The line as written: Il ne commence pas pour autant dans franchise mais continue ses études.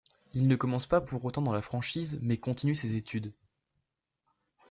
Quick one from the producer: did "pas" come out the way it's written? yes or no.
yes